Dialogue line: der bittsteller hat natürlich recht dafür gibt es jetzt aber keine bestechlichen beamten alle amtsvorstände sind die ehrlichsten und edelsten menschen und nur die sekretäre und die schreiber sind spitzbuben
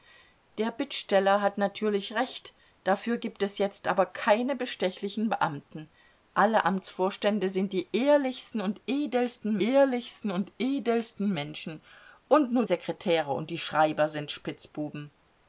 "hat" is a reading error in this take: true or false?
false